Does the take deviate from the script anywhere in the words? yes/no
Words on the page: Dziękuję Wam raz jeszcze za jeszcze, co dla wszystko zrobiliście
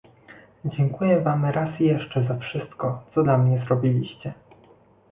yes